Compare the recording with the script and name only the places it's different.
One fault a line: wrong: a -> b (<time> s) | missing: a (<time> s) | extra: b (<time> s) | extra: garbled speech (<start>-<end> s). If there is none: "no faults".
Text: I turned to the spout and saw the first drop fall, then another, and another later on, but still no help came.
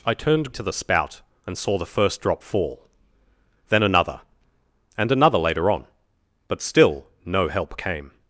no faults